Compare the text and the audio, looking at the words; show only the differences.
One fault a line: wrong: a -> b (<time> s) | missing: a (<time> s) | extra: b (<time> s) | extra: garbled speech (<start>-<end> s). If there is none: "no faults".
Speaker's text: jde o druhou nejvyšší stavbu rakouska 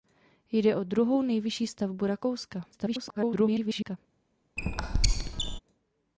extra: garbled speech (2.7-4.0 s)